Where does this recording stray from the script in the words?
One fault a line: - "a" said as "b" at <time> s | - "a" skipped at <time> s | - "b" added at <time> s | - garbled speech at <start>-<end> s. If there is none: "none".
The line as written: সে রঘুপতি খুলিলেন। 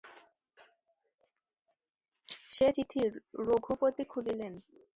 - "চিঠি" added at 2.7 s